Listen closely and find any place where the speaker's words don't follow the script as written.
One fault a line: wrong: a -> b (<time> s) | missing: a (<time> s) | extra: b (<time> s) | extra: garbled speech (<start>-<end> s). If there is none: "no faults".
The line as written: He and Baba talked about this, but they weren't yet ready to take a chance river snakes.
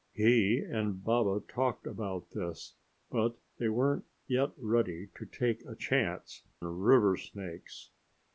no faults